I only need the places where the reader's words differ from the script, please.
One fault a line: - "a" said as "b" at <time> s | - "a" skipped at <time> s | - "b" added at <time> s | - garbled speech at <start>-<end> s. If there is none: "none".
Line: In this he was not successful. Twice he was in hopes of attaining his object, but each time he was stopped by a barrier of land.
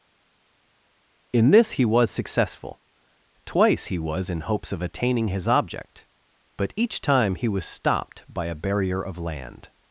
- "not" skipped at 2.1 s